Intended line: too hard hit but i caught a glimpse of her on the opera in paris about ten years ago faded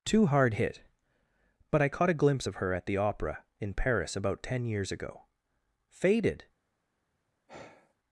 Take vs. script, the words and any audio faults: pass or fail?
fail